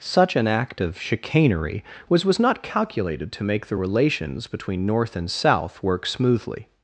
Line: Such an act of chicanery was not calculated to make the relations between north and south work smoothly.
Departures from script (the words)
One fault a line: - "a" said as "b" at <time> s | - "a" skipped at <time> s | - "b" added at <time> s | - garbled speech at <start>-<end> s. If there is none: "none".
- "was" added at 2.2 s